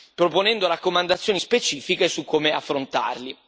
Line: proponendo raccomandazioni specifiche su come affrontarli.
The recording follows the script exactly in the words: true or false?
true